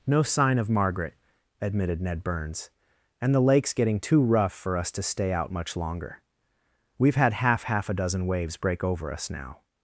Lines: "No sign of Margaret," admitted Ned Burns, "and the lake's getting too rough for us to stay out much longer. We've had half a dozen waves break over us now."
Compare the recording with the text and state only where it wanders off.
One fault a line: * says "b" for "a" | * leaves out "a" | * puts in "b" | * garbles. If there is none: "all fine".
* puts in "half"